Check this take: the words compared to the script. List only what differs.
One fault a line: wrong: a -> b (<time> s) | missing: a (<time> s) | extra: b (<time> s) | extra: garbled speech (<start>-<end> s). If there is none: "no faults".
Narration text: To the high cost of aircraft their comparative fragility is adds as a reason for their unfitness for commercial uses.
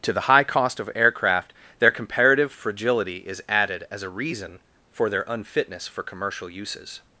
wrong: adds -> added (3.5 s)